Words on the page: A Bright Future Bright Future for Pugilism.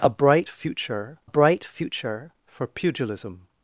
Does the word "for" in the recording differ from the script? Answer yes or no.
no